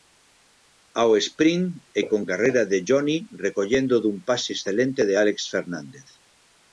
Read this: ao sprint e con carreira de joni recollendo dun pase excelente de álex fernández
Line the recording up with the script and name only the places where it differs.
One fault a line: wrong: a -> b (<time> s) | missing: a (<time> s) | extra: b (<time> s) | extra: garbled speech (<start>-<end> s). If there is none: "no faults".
no faults